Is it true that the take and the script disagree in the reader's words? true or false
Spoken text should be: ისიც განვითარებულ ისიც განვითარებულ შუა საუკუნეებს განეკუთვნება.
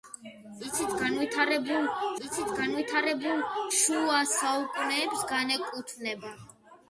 false